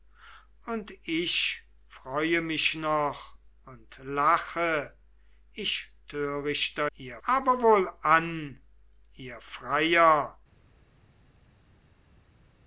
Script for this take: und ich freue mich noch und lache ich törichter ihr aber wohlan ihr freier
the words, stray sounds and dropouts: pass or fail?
pass